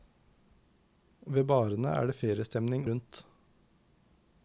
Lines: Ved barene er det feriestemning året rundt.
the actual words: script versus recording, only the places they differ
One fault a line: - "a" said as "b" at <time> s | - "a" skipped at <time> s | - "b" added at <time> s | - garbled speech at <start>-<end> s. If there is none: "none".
- "året" skipped at 2.9 s